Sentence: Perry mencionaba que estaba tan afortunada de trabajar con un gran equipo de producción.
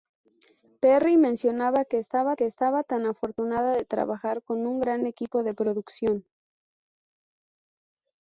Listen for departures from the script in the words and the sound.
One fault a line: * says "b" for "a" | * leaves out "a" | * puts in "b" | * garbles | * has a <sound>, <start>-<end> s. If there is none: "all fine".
* puts in "que estaba"